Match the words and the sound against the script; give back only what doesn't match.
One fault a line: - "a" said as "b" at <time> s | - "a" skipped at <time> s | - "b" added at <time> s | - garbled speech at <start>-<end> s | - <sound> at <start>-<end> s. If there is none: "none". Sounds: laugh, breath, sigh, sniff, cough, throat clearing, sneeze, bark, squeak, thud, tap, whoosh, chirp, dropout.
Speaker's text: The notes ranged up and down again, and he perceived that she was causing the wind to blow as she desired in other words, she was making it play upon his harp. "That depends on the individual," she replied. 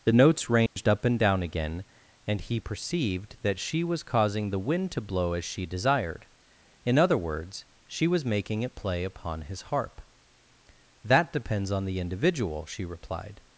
- dropout at 0.7-0.8 s